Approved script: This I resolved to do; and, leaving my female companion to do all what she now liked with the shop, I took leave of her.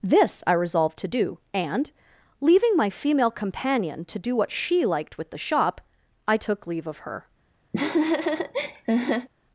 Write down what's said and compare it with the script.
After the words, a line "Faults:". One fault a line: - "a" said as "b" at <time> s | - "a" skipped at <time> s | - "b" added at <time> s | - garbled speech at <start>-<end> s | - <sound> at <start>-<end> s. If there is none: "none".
This I resolved to do; and, leaving my female companion to do what she liked with the shop, I took leave of her.
Faults:
- "all" skipped at 4.3 s
- "now" skipped at 4.8 s
- laugh at 7.7-9.3 s